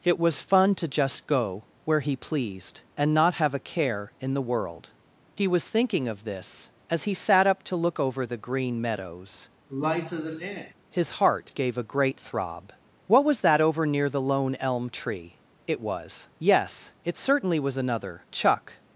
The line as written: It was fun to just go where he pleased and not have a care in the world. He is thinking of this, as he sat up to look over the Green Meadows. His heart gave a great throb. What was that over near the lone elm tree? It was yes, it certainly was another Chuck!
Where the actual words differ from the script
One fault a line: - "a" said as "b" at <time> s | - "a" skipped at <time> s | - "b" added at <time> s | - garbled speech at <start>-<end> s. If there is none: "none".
- "is" said as "was" at 5.5 s